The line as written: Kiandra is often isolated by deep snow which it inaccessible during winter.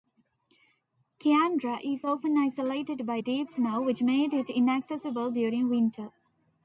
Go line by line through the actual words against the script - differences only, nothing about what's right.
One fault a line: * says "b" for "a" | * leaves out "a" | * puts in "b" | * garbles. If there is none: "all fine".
* puts in "made"